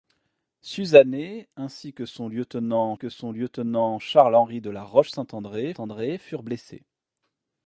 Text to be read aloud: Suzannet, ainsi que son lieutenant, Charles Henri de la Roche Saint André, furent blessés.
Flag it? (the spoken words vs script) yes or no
yes